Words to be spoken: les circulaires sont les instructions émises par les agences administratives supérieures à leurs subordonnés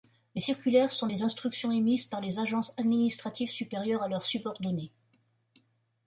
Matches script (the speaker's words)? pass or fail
pass